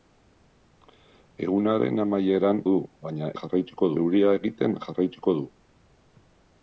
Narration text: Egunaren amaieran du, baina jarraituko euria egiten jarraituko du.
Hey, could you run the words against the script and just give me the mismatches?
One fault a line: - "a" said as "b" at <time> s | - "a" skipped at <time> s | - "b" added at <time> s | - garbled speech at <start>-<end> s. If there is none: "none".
none